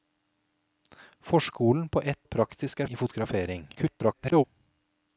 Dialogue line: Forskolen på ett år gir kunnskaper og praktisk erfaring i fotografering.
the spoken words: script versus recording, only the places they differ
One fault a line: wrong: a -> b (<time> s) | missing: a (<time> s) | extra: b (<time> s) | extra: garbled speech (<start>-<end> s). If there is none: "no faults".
missing: år gir kunnskaper (2.3 s)
missing: erfaring (2.8 s)
extra: garbled speech (3.8-4.4 s)